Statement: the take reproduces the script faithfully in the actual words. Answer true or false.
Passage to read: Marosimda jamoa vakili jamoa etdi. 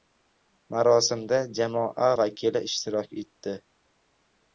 false